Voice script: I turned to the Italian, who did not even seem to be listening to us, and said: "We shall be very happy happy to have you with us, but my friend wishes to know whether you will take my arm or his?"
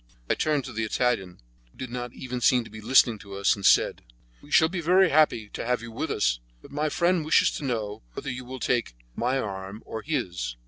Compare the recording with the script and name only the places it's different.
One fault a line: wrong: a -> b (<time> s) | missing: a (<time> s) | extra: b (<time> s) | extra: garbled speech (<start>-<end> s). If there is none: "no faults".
missing: happy (5.5 s)